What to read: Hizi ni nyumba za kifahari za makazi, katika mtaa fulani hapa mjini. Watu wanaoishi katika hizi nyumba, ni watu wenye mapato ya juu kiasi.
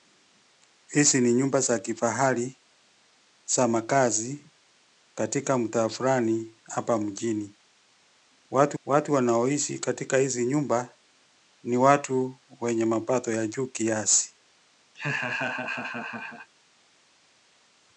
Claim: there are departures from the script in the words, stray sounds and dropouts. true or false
true